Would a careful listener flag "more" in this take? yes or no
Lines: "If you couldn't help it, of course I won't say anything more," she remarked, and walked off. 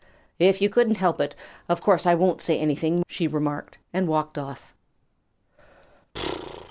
yes